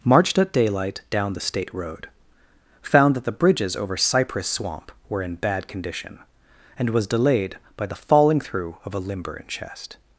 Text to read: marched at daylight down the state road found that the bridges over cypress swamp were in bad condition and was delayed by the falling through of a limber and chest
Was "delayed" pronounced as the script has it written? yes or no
yes